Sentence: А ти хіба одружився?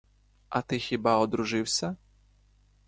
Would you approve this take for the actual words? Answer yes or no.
yes